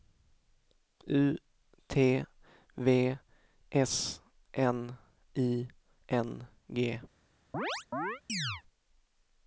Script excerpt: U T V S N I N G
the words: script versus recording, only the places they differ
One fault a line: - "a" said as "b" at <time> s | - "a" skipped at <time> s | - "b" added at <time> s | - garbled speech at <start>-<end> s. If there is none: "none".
none